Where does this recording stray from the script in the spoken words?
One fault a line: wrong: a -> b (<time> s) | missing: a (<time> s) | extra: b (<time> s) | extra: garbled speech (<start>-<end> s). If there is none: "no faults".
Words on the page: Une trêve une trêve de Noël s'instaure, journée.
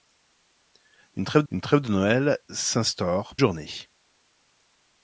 no faults